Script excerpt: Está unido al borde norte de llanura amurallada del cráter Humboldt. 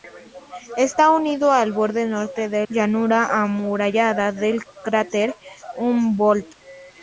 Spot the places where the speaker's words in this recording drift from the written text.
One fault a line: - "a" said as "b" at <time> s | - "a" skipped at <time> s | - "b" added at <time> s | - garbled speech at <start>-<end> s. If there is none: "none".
none